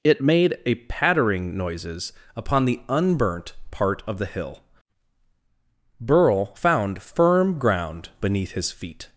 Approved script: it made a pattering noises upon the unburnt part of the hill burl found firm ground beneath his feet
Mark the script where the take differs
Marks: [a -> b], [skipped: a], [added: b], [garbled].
it made a pattering noises upon the unburnt part of the hill burl found firm ground beneath his feet